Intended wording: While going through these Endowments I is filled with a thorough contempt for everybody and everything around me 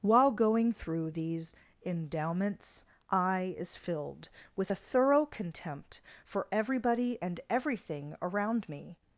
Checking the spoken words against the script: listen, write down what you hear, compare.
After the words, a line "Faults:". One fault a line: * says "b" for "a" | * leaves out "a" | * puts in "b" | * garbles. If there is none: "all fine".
While going through these Endowments I is filled with a thorough contempt for everybody and everything around me
Faults:
all fine